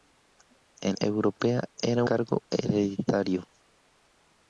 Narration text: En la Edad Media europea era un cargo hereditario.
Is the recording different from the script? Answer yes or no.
yes